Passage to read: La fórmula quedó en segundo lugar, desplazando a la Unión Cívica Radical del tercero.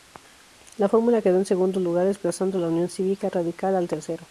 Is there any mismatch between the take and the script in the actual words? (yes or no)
yes